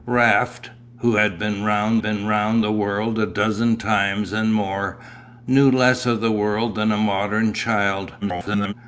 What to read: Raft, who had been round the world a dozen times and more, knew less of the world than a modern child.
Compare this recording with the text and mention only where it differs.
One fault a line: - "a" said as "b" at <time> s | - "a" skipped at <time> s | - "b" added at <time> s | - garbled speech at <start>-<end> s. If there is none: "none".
- "been round" added at 2.0 s
- garbled speech at 8.2-8.7 s